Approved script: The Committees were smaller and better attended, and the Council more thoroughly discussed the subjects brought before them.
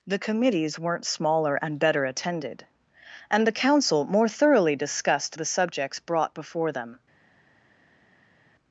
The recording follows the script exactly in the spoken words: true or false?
false